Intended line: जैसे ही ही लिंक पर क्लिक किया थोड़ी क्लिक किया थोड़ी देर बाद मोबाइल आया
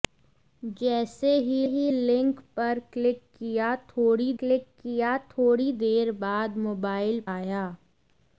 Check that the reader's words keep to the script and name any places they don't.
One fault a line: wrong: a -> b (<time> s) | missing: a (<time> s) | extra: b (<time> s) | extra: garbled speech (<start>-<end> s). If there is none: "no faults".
no faults